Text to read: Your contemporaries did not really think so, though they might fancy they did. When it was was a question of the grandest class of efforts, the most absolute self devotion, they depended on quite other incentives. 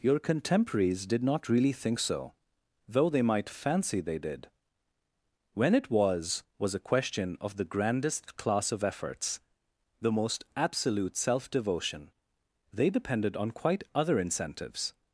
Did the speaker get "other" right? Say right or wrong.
right